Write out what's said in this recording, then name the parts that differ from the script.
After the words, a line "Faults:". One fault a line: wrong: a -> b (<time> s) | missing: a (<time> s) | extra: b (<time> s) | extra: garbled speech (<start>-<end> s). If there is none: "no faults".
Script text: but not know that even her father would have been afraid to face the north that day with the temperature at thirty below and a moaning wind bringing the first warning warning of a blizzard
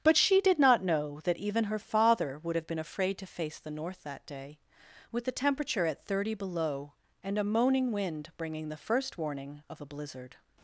but she did not know that even her father would have been afraid to face the north that day with the temperature at thirty below and a moaning wind bringing the first warning of a blizzard
Faults:
extra: she did (0.2 s)
missing: warning (9.6 s)